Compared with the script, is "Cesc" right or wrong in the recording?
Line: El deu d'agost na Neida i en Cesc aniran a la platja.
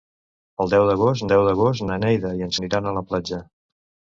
wrong